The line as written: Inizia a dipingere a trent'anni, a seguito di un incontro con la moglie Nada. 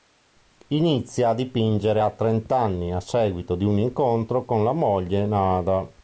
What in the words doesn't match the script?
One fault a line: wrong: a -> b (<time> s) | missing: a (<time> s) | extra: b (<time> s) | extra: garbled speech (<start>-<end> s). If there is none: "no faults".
no faults